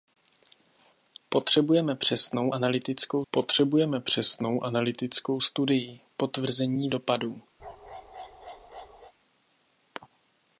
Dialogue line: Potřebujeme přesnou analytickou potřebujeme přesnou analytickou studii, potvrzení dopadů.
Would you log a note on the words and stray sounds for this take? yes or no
yes